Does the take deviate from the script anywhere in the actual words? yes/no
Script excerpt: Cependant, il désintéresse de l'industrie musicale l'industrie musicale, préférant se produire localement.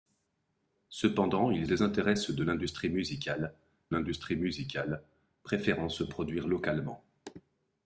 no